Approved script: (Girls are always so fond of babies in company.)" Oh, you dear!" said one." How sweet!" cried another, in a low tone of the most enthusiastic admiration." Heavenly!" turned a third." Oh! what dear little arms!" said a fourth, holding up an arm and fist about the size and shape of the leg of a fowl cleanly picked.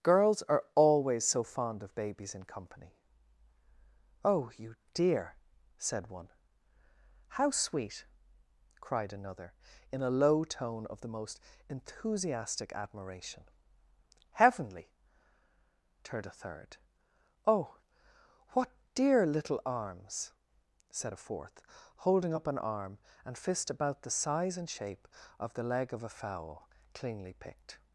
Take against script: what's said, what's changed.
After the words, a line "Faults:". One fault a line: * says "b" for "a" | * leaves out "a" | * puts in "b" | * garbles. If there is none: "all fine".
(Girls are always so fond of babies in company.)" Oh, you dear!" said one." How sweet!" cried another, in a low tone of the most enthusiastic admiration." Heavenly!" turned a third." Oh! what dear little arms!" said a fourth, holding up an arm and fist about the size and shape of the leg of a fowl cleanly picked.
Faults:
all fine